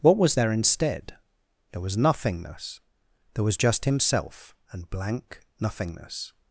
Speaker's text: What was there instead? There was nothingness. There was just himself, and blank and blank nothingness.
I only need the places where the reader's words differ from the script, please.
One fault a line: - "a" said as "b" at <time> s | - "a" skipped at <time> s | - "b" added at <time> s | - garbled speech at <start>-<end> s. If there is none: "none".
- "and blank" skipped at 5.4 s